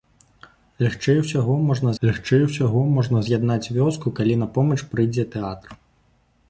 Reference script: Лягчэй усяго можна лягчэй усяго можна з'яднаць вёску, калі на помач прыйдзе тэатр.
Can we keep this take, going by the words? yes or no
yes